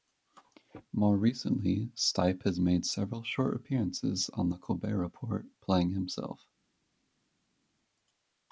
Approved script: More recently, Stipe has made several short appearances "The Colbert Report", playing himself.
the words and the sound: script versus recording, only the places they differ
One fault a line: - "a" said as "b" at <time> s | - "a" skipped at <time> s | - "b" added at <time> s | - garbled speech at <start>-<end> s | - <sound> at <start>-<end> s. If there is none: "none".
- "on" added at 4.3 s